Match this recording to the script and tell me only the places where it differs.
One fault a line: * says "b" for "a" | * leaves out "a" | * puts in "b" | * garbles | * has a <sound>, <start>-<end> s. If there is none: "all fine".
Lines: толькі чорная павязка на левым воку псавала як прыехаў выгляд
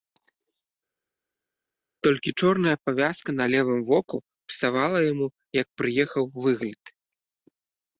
* puts in "яму"